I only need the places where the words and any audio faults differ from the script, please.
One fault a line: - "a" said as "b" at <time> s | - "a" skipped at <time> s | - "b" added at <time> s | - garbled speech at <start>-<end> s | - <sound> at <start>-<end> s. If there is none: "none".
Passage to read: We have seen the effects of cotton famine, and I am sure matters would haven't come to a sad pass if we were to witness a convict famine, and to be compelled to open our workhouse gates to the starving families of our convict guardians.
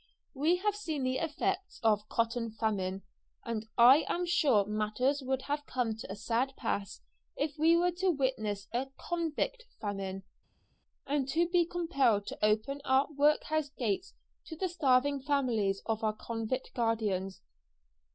- "haven't" said as "have" at 5.4 s